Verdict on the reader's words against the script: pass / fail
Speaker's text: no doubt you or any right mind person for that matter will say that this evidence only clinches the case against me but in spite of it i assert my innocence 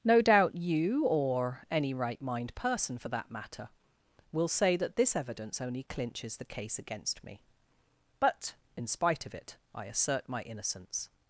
pass